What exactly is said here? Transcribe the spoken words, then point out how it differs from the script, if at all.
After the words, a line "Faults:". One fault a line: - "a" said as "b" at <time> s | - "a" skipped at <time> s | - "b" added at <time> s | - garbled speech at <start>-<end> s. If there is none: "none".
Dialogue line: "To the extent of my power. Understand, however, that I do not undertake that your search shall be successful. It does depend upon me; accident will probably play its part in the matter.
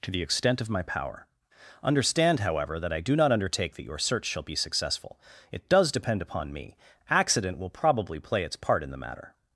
"To the extent of my power. Understand, however, that I do not undertake that your search shall be successful. It does depend upon me; accident will probably play its part in the matter.
Faults:
none